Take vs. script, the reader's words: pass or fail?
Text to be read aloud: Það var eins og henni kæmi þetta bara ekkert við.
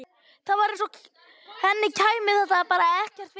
pass